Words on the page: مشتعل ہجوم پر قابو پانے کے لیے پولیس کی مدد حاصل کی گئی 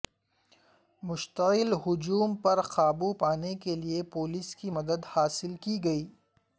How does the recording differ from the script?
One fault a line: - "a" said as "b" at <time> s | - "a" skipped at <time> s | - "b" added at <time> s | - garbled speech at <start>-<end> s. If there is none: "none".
none